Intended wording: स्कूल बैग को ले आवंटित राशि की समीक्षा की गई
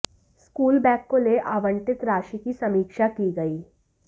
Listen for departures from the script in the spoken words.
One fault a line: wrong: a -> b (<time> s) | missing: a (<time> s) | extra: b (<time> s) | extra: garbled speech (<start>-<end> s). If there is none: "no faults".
no faults